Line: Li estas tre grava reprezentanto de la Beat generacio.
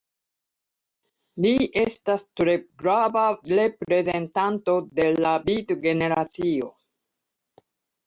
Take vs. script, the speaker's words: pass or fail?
pass